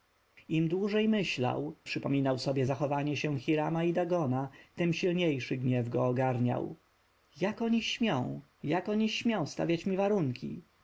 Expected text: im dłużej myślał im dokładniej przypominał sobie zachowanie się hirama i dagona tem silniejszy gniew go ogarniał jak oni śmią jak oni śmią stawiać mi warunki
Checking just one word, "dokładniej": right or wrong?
wrong